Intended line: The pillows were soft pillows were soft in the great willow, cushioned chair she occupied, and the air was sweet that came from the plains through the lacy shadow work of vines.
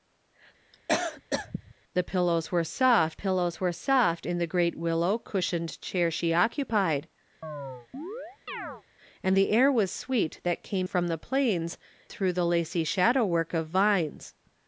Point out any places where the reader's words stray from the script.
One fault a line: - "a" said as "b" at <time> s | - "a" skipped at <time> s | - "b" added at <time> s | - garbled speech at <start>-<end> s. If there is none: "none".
none